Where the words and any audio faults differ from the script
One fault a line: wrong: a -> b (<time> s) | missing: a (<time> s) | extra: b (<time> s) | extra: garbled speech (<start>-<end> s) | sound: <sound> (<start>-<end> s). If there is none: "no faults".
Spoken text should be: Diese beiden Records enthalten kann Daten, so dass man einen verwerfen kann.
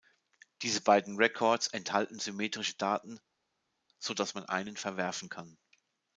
wrong: kann -> symmetrische (2.2 s)